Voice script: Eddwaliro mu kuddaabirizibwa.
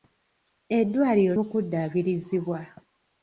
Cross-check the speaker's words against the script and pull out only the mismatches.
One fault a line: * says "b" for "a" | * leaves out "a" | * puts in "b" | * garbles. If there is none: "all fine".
all fine